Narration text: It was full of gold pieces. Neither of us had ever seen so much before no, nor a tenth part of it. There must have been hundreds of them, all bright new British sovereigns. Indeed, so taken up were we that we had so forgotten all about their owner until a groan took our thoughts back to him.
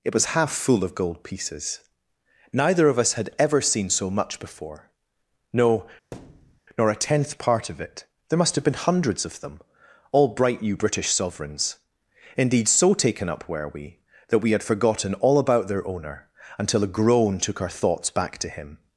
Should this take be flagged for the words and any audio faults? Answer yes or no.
yes